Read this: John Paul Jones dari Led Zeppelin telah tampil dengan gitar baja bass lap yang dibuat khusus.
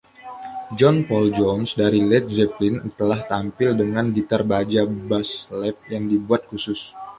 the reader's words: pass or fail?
pass